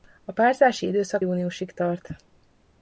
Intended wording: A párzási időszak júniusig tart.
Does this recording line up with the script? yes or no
yes